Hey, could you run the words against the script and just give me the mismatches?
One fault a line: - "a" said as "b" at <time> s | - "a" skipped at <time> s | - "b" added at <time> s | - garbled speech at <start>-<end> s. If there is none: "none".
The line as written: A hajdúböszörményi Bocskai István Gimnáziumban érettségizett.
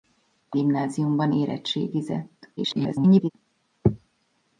- "hajdúböszörményi Bocskai István" skipped at 0.6 s
- garbled speech at 2.6-3.3 s